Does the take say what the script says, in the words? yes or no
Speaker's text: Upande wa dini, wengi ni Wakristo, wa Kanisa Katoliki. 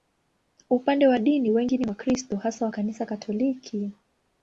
no